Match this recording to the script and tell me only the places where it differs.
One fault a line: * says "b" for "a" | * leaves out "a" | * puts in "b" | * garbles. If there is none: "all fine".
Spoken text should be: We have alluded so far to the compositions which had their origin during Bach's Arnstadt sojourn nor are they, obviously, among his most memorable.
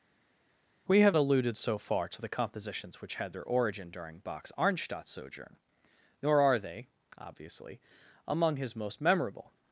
all fine